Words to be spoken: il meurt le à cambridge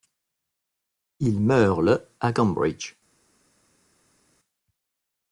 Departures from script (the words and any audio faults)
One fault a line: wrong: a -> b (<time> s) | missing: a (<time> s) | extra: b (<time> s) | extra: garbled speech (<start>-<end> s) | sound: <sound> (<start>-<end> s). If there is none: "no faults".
no faults